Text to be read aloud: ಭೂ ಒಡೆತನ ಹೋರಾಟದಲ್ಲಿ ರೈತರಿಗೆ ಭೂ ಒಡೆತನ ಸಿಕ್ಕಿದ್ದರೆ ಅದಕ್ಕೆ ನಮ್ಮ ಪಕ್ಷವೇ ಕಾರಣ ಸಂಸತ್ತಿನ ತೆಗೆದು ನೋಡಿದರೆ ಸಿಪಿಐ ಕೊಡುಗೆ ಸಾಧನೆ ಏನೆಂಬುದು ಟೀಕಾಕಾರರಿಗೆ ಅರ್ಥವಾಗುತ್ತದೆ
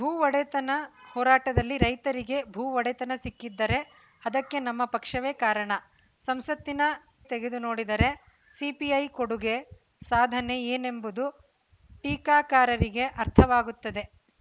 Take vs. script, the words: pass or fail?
pass